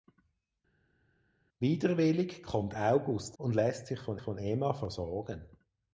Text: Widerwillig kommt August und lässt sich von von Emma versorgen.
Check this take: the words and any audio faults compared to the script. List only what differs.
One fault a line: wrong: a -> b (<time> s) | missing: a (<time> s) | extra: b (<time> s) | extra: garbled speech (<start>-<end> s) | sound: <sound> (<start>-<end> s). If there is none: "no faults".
no faults